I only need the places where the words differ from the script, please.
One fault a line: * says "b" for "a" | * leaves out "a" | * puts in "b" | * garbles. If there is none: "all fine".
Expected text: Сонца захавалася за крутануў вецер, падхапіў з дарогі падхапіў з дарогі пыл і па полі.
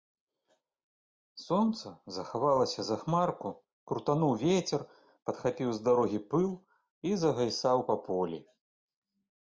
* puts in "хмарку"
* leaves out "падхапіў з дарогі"
* puts in "загайсаў"